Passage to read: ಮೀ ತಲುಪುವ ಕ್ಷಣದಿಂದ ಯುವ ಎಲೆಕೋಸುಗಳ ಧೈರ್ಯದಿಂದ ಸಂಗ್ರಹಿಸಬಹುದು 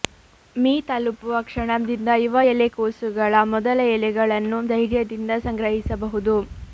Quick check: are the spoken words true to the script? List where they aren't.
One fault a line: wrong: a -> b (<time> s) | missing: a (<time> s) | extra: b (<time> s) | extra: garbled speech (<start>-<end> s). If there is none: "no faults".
extra: ಮೊದಲ ಎಲೆಗಳನ್ನು (3.5 s)